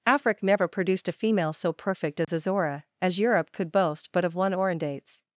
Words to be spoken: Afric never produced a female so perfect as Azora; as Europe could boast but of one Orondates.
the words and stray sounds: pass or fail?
fail